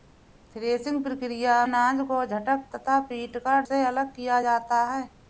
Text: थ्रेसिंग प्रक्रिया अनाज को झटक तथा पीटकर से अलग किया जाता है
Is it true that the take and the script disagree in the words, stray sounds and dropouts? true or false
false